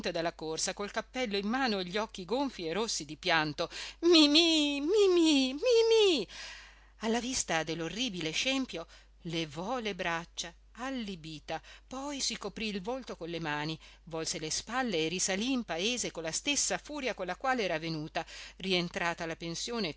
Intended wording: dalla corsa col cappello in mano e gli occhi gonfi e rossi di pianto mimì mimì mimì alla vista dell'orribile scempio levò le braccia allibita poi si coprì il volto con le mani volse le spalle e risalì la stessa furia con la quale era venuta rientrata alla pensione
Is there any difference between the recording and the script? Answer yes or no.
yes